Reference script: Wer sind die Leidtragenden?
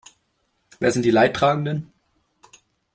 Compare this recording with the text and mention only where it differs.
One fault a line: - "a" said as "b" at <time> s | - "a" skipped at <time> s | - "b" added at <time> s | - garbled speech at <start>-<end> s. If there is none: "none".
none